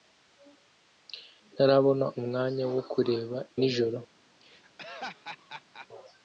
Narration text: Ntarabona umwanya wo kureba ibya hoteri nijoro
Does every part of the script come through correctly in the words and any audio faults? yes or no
no